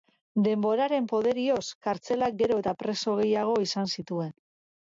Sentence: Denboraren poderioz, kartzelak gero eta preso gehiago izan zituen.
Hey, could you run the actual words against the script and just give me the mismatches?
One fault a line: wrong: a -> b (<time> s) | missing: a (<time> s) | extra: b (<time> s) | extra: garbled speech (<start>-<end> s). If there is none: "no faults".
no faults